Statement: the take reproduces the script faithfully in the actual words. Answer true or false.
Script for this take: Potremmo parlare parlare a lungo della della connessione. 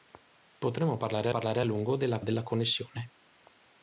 true